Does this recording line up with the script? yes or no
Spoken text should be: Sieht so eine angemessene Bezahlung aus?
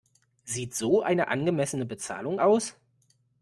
yes